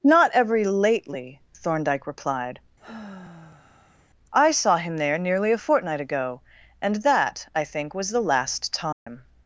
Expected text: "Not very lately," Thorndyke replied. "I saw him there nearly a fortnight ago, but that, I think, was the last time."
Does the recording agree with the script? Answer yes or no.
no